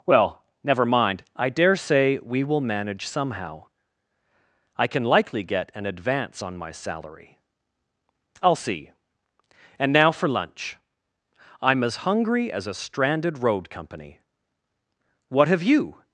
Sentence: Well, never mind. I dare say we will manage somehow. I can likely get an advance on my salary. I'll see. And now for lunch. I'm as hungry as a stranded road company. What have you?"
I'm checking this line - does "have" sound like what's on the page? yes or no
yes